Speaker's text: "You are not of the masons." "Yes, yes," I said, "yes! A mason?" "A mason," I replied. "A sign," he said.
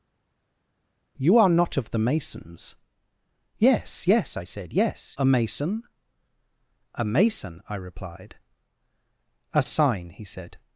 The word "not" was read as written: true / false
true